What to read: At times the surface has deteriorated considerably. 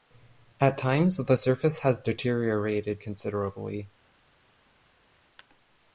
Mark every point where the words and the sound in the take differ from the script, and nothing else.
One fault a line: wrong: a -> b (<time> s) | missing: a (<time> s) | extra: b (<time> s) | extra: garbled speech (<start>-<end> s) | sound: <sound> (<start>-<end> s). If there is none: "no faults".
no faults